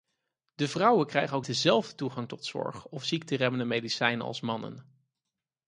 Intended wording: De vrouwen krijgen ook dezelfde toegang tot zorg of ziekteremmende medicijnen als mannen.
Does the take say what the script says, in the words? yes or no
yes